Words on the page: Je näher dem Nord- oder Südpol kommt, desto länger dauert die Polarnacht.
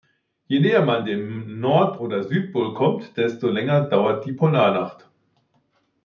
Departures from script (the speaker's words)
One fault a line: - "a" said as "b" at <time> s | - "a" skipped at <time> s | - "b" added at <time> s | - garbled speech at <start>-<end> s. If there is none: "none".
- "man" added at 0.8 s